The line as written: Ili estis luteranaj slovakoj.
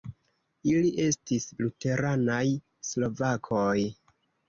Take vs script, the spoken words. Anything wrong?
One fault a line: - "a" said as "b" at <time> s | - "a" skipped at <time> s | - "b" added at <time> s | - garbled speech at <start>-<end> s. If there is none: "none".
none